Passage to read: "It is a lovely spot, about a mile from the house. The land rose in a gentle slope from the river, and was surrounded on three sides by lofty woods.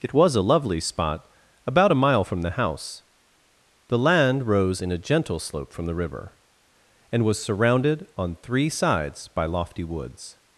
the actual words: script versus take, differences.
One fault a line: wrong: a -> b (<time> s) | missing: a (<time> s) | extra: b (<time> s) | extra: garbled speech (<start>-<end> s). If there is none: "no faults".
wrong: is -> was (0.1 s)